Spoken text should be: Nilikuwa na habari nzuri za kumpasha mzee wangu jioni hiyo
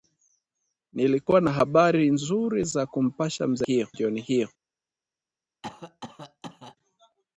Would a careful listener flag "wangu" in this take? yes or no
yes